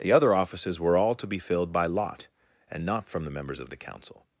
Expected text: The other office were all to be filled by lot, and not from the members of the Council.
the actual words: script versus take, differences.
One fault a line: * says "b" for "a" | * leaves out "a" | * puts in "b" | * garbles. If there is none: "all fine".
* says "offices" for "office"